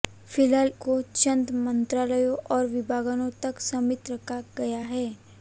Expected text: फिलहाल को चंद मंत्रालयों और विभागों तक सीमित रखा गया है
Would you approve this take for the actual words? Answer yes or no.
yes